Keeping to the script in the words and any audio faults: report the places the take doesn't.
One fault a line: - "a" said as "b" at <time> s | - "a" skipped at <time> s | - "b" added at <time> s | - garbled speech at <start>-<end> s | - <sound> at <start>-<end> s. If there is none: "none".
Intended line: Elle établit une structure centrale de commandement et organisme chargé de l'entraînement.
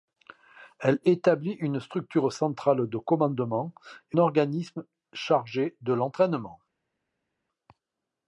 none